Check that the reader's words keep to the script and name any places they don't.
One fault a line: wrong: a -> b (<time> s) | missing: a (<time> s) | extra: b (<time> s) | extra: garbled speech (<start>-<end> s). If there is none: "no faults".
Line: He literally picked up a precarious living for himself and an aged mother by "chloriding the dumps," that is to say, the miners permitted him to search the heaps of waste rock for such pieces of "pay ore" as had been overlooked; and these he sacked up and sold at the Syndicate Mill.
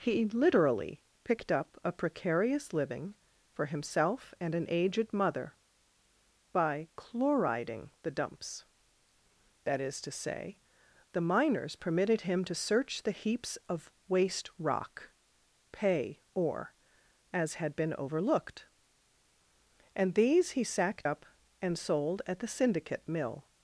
missing: for such pieces of (15.1 s)